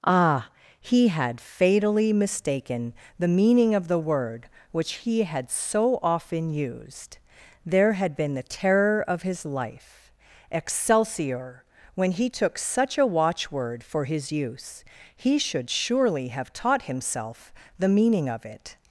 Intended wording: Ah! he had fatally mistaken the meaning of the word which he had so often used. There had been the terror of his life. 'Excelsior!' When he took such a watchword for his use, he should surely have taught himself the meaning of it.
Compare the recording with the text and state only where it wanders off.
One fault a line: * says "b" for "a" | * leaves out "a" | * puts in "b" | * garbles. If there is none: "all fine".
all fine